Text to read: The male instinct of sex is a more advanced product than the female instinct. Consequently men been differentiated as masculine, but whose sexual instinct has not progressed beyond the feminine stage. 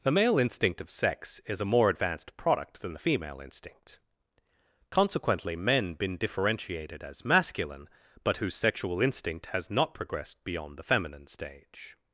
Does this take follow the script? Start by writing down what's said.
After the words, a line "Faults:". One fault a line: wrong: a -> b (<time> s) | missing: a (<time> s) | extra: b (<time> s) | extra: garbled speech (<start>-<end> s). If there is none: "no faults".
The male instinct of sex is a more advanced product than the female instinct. Consequently men been differentiated as masculine, but whose sexual instinct has not progressed beyond the feminine stage.
Faults:
no faults